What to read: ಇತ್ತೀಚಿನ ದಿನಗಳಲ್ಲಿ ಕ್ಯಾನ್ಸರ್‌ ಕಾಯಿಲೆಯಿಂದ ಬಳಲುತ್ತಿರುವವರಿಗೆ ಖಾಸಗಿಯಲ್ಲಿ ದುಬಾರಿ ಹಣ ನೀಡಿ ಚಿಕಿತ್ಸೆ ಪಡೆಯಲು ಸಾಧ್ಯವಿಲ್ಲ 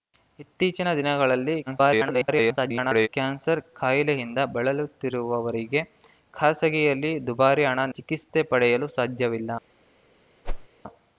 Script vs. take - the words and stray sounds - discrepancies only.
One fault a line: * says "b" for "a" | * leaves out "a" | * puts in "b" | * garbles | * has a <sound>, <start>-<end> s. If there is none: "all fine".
* garbles
* leaves out "ನೀಡಿ"
* has a whoosh, 10.4-10.7 s